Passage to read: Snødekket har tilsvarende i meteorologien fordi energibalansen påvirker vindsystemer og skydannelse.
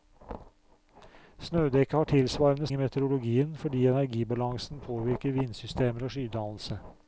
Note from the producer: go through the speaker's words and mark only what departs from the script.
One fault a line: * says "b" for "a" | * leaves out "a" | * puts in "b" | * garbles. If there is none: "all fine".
all fine